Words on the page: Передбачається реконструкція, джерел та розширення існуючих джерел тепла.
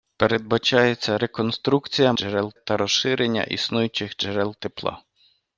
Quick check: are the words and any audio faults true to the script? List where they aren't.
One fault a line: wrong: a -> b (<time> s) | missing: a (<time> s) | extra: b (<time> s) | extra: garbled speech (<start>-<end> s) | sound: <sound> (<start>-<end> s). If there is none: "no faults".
no faults